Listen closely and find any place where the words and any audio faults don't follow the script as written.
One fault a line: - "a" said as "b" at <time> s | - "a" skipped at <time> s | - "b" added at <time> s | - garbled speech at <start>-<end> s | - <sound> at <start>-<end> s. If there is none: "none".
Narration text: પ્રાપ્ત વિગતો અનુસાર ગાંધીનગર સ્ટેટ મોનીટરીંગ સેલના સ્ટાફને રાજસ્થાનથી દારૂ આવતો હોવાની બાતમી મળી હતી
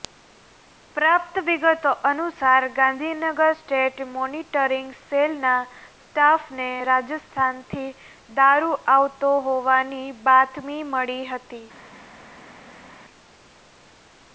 none